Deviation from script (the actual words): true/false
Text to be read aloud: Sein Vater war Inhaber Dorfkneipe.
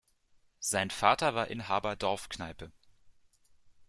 false